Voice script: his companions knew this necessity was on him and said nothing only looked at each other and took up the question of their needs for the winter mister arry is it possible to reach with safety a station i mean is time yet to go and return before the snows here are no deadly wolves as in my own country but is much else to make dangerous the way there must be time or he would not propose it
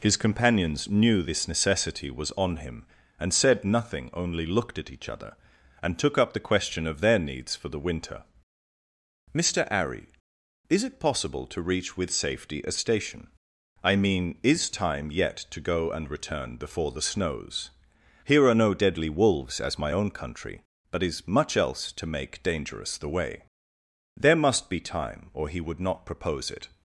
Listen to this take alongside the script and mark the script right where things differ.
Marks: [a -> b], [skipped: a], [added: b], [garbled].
his companions knew this necessity was on him and said nothing only looked at each other and took up the question of their needs for the winter mister arry is it possible to reach with safety a station i mean is time yet to go and return before the snows here are no deadly wolves as [skipped: in] my own country but is much else to make dangerous the way there must be time or he would not propose it